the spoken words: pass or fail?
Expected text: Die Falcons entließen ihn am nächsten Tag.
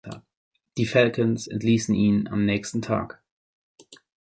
pass